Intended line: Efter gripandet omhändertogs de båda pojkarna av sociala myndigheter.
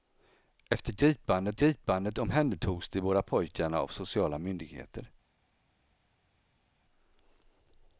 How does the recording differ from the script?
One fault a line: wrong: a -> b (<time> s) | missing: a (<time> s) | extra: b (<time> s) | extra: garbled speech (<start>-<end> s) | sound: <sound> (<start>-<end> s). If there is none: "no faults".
extra: gripandet (1.5 s)